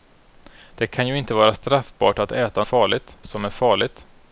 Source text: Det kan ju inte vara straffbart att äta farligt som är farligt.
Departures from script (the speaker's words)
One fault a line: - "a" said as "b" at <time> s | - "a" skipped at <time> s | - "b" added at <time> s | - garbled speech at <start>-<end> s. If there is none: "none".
none